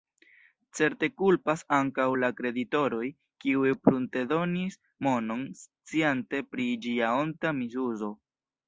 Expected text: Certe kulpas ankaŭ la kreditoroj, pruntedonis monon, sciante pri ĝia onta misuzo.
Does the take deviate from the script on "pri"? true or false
false